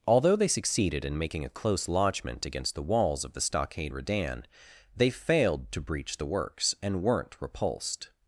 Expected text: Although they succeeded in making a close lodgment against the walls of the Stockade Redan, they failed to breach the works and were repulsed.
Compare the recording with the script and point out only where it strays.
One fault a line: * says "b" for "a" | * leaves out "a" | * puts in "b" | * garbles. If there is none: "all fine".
* says "weren't" for "were"